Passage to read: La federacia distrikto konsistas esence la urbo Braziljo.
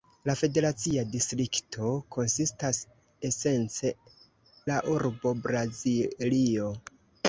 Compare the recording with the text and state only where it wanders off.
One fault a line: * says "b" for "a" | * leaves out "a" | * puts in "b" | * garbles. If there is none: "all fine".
all fine